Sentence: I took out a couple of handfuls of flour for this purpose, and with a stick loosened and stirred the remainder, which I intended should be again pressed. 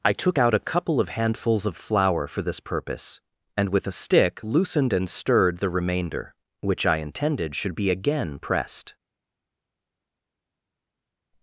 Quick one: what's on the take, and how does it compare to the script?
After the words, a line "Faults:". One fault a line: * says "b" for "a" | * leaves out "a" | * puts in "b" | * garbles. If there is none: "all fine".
I took out a couple of handfuls of flour for this purpose, and with a stick loosened and stirred the remainder, which I intended should be again pressed.
Faults:
all fine